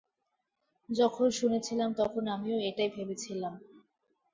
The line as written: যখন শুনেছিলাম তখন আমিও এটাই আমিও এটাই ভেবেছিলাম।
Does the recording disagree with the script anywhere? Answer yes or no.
yes